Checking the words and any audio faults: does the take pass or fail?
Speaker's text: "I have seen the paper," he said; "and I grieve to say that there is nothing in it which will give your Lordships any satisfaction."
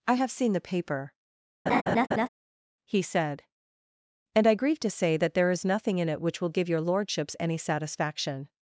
fail